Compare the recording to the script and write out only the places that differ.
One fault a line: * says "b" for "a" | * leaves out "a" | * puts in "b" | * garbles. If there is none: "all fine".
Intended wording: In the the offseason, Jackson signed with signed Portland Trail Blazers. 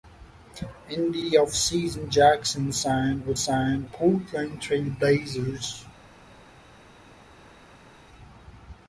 all fine